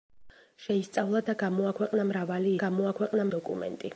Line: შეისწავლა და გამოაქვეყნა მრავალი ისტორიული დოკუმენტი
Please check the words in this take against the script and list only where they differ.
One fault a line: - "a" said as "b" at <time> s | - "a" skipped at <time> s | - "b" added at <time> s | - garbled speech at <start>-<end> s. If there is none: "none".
- "ისტორიული" said as "გამოაქვეყნა" at 2.6 s